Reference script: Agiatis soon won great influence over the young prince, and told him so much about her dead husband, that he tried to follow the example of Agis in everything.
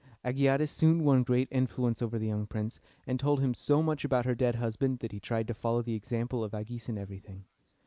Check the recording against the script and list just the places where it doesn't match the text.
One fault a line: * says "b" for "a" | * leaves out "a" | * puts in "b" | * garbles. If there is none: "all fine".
all fine